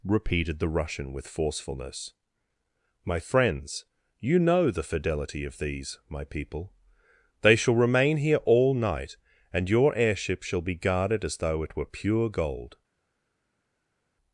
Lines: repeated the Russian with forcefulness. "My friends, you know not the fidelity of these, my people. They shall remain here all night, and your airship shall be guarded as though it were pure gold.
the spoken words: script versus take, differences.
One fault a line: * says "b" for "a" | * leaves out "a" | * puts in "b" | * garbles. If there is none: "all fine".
* leaves out "not"